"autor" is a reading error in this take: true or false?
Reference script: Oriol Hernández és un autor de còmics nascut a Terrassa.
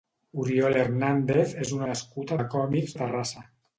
true